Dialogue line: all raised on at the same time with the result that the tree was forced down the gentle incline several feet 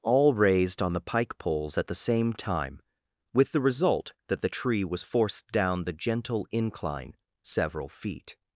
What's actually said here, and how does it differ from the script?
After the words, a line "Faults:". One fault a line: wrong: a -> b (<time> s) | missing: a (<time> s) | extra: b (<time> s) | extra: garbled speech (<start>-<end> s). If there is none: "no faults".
all raised on the pike poles at the same time with the result that the tree was forced down the gentle incline several feet
Faults:
extra: the pike poles (0.9 s)